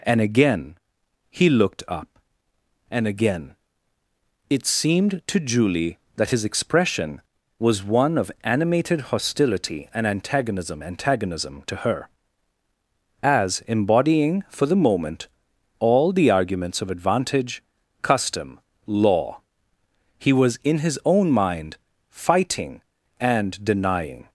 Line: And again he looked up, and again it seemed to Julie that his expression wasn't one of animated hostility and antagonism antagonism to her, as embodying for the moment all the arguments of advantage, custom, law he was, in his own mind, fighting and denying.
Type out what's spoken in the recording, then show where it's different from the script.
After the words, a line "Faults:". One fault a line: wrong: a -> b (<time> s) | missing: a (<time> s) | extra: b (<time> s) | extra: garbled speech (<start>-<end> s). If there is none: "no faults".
And again he looked up, and again it seemed to Julie that his expression was one of animated hostility and antagonism antagonism to her, as embodying for the moment all the arguments of advantage, custom, law he was, in his own mind, fighting and denying.
Faults:
wrong: wasn't -> was (7.6 s)